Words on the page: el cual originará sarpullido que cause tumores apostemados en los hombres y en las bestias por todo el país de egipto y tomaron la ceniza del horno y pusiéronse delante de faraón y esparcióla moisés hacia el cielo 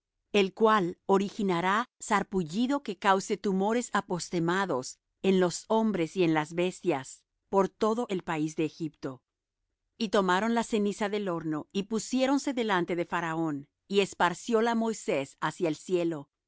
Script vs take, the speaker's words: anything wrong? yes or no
no